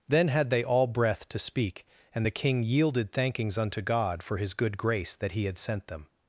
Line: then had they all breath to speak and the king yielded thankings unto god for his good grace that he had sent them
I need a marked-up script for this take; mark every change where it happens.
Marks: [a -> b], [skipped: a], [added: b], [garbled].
then had they all breath to speak and the king yielded thankings unto god for his good grace that he had sent them